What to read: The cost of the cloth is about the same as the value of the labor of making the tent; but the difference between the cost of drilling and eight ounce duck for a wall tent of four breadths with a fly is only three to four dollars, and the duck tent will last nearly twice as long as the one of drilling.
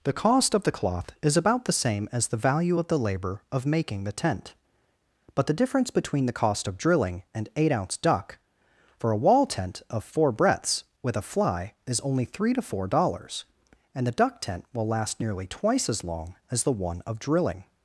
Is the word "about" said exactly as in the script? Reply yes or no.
yes